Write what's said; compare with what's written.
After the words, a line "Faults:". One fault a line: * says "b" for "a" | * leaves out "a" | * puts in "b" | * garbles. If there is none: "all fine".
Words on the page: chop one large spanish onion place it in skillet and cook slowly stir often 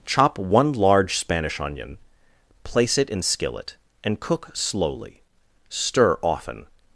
chop one large spanish onion place it in skillet and cook slowly stir often
Faults:
all fine